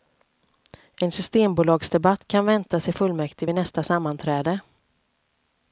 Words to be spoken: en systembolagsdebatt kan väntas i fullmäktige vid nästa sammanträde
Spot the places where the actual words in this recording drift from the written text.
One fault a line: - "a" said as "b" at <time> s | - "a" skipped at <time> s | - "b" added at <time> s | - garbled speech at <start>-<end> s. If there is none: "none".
none